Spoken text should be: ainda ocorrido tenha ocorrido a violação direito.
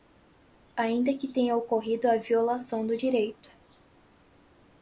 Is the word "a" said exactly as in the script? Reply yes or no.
yes